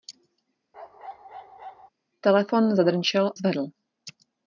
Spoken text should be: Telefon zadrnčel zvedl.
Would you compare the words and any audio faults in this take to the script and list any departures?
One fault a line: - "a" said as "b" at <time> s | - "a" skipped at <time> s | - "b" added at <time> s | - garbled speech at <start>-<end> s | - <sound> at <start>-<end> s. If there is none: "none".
- bark at 0.7-1.9 s